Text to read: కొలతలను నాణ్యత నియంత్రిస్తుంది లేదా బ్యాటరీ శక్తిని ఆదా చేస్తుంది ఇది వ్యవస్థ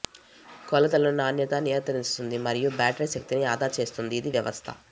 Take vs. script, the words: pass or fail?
fail